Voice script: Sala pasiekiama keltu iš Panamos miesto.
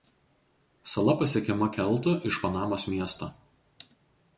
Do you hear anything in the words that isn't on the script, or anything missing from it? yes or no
no